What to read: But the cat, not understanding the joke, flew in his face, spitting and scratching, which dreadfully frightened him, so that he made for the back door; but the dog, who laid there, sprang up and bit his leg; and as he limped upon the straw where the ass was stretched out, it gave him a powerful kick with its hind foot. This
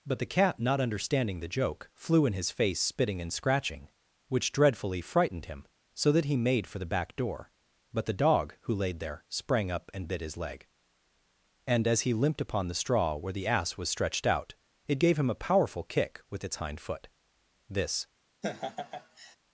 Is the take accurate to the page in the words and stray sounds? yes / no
no